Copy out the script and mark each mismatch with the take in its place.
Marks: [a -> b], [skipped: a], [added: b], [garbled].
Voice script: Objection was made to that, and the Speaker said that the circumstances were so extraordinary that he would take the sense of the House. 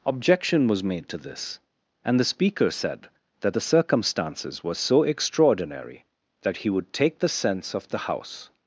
Objection was made to [that, -> this] and the Speaker said that the circumstances were so extraordinary that he would take the sense of the House.